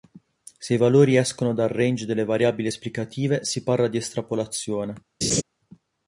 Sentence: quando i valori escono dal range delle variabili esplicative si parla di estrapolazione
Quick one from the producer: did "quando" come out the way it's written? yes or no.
no